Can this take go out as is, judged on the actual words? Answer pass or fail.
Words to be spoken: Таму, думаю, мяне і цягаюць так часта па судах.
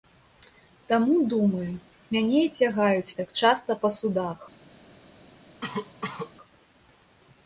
pass